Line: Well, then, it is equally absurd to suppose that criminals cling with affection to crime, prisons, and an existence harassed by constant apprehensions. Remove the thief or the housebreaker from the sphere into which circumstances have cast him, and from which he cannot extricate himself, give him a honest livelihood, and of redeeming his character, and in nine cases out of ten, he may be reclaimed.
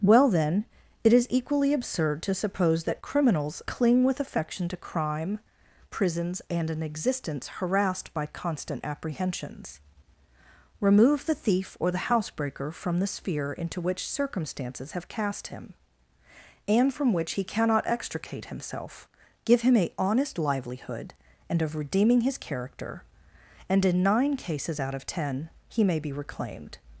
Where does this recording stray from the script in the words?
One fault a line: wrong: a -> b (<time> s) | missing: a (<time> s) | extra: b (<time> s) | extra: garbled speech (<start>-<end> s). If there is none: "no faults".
no faults